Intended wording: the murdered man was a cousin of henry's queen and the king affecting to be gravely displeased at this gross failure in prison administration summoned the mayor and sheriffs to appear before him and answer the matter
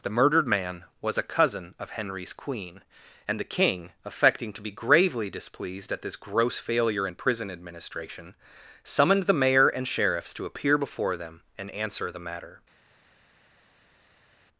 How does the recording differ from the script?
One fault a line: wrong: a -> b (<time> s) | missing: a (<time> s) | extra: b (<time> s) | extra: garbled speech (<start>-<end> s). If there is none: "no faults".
wrong: him -> them (11.2 s)